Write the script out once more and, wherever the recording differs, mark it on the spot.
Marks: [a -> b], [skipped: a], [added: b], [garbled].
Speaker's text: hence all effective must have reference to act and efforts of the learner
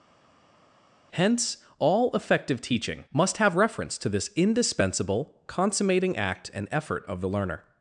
hence all effective [added: teaching] must have reference to [added: this indispensable consummating] act and [efforts -> effort] of the learner